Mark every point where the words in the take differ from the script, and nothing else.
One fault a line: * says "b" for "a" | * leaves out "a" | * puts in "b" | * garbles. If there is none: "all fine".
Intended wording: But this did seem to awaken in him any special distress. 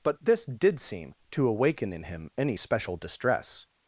all fine